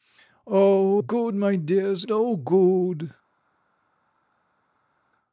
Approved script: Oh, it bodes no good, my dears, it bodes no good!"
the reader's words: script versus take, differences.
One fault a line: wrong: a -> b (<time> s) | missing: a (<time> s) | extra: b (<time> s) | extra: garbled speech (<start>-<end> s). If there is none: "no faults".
missing: it bodes no (1.0 s)
missing: it bodes (2.0 s)